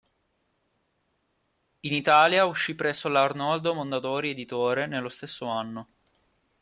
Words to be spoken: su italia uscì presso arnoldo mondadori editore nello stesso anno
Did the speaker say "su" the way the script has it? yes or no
no